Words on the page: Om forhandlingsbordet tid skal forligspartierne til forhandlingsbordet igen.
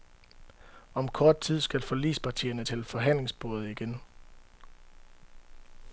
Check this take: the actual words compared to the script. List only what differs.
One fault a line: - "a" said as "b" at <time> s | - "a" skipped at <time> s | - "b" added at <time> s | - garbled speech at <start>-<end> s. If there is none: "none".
- "forhandlingsbordet" said as "kort" at 1.1 s